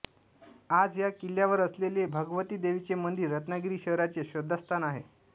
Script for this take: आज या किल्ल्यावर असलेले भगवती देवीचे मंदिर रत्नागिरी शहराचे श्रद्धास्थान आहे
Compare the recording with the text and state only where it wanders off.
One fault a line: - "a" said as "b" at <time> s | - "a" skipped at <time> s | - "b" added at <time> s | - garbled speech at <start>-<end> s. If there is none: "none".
none